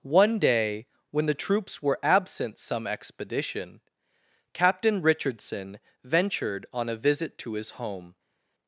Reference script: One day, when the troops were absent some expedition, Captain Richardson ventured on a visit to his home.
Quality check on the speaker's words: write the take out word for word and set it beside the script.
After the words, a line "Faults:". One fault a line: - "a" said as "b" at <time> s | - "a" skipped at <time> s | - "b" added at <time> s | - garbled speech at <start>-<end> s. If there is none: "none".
One day, when the troops were absent some expedition, Captain Richardson ventured on a visit to his home.
Faults:
none